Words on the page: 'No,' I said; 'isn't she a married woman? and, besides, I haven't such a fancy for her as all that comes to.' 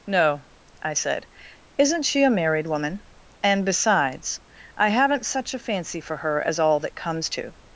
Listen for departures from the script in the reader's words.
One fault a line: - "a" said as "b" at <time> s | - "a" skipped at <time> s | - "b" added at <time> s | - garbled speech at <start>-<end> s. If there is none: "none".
none